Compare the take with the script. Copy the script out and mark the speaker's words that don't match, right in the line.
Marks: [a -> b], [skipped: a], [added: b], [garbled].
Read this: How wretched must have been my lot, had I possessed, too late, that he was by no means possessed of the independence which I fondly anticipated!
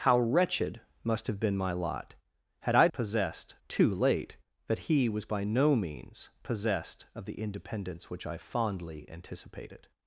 How wretched must have been my lot, had I possessed, too late, that he was by no means possessed of the independence which I fondly anticipated!